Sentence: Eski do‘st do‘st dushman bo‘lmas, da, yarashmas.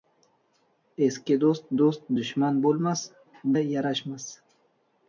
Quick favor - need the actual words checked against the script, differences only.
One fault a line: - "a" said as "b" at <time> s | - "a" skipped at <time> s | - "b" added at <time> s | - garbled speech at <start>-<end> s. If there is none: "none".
none